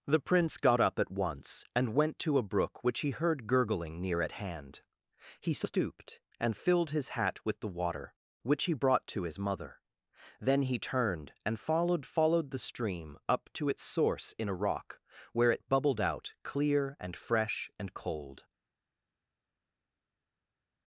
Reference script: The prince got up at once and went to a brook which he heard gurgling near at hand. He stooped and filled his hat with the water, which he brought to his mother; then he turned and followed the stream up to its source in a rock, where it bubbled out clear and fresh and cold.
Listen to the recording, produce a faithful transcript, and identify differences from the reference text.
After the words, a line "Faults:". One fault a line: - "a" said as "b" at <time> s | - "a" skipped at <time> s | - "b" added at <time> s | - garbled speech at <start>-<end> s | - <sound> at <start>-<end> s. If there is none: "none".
The prince got up at once and went to a brook which he heard gurgling near at hand. He stooped and filled his hat with the water, which he brought to his mother; then he turned and followed followed the stream up to its source in a rock, where it bubbled out clear and fresh and cold.
Faults:
- "followed" added at 12.1 s